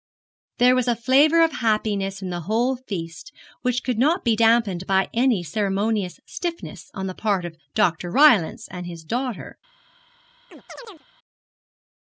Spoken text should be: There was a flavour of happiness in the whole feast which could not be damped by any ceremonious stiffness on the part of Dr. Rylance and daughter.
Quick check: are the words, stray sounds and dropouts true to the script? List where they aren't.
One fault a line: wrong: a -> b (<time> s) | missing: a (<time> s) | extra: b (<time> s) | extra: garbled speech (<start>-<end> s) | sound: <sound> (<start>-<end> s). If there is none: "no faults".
extra: his (8.8 s)
sound: chirp (10.5-11.0 s)